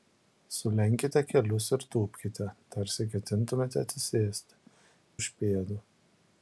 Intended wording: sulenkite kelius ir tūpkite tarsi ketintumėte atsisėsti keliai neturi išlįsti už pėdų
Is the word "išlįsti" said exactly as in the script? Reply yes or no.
no